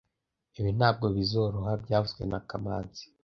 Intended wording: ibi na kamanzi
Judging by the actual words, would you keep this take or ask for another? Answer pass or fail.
fail